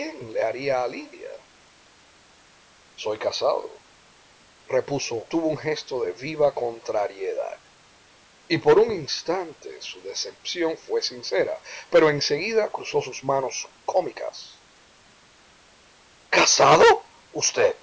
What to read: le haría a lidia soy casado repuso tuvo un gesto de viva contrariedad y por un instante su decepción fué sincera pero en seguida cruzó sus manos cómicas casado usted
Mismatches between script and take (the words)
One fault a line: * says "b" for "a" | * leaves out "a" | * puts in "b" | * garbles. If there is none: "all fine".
all fine